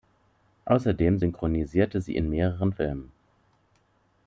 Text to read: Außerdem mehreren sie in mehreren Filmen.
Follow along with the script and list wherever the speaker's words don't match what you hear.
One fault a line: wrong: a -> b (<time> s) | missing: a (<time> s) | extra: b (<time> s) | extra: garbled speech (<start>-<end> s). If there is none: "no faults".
wrong: mehreren -> synchronisierte (1.2 s)